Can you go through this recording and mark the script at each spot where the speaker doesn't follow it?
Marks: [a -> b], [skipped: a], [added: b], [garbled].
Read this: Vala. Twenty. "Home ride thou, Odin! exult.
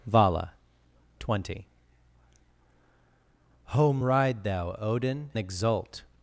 Vala. Twenty. "Home ride thou, Odin! exult.